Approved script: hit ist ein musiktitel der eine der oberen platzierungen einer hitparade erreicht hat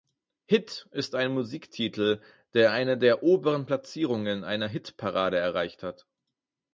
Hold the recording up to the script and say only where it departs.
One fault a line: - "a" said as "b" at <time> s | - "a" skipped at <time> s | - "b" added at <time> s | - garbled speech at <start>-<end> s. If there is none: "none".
none